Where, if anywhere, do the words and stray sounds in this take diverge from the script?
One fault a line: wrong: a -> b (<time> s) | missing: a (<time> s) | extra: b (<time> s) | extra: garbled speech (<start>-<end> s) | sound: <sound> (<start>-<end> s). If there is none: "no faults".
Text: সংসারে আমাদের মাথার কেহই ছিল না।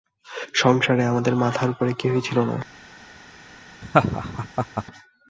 extra: উপরে (1.7 s)
sound: laugh (3.8-4.8 s)